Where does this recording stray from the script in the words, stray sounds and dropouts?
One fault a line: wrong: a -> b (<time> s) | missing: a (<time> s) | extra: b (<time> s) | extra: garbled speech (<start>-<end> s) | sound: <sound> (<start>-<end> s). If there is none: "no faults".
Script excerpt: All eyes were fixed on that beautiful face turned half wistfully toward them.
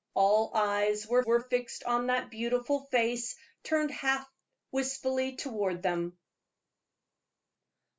extra: were (1.2 s)